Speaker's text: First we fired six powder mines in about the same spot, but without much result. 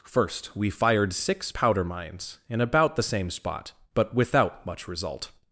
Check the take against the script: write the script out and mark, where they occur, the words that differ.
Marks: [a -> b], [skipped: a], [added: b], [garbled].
First we fired six powder mines in about the same spot, but without much result.